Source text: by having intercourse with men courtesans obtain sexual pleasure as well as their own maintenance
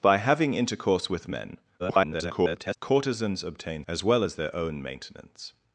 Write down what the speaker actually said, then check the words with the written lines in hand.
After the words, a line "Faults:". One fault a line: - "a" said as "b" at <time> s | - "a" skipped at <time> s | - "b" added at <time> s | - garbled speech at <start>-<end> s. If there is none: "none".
by having intercourse with men [garbled] courtesans obtain as well as their own maintenance
Faults:
- garbled speech at 1.8-2.8 s
- "sexual pleasure" skipped at 3.8 s